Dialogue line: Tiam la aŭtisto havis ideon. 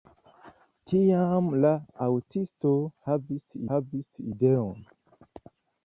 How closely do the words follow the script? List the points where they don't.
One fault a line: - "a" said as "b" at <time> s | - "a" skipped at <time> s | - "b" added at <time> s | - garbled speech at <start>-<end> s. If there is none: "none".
- "havis" added at 3.7 s